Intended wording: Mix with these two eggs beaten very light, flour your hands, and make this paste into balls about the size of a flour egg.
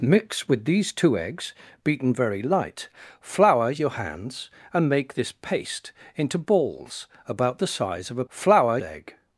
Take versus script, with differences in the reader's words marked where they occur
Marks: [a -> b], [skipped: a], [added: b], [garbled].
Mix with these two eggs beaten very light, flour your hands, and make this paste into balls about the size of a flour egg.